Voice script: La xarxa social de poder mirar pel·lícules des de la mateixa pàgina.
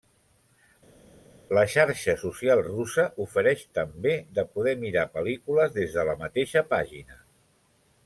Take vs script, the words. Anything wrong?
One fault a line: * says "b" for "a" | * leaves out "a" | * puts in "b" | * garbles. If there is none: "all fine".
* puts in "russa ofereix també"